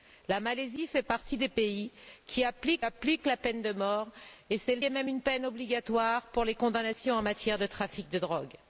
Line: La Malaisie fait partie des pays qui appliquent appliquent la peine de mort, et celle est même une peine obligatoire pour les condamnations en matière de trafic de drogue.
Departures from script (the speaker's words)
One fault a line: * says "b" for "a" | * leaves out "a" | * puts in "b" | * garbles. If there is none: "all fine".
all fine